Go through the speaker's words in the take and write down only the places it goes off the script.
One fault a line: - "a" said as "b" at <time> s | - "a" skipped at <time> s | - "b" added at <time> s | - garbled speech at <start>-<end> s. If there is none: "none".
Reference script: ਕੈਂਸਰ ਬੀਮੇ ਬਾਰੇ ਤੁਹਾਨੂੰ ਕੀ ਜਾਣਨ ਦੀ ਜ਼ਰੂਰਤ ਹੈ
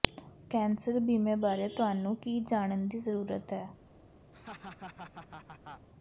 none